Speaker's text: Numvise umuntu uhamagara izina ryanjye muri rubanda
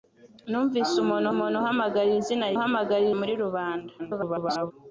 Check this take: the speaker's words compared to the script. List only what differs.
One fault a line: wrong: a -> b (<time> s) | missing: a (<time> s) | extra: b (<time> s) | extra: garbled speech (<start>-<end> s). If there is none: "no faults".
extra: umuntu (1.3 s)
wrong: ryanjye -> uhamagara (2.5 s)
extra: garbled speech (4.0-4.7 s)